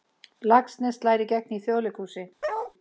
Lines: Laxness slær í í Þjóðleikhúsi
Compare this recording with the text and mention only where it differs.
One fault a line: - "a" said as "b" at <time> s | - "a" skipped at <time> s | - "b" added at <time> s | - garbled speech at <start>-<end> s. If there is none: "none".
- "gegn" added at 1.3 s